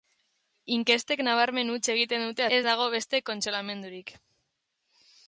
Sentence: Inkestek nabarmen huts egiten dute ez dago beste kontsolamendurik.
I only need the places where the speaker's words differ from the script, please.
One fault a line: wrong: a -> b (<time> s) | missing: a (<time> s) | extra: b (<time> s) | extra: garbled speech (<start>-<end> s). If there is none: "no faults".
no faults